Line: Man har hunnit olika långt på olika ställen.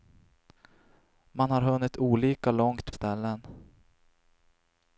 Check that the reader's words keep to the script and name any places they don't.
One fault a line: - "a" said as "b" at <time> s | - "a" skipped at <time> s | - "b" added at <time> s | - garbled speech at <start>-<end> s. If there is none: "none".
- "på olika" skipped at 2.9 s